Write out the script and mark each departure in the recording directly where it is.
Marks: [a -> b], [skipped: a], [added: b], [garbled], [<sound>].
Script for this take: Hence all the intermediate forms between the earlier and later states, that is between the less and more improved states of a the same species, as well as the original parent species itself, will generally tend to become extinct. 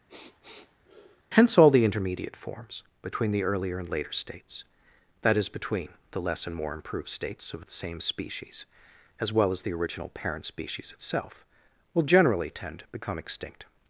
[sniff] Hence all the intermediate forms between the earlier and later states, that is between the less and more improved states of [skipped: a] the same species, as well as the original parent species itself, will generally tend to become extinct.